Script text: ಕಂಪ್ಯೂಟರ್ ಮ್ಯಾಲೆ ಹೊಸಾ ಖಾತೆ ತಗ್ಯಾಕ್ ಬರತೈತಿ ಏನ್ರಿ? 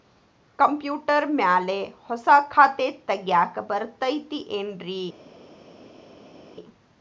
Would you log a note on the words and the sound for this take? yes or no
no